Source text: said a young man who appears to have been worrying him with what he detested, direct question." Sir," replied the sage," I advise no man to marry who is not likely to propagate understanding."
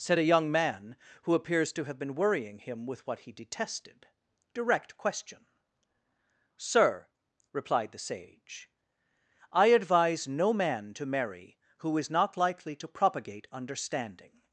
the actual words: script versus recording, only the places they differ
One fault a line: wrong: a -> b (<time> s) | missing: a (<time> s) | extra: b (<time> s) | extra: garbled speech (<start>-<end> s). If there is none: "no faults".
no faults